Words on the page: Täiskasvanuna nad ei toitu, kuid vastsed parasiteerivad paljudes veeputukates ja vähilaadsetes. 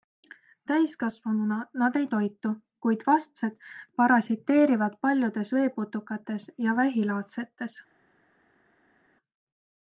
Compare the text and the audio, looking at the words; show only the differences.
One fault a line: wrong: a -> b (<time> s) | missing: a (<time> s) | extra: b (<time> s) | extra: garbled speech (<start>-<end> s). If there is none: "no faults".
no faults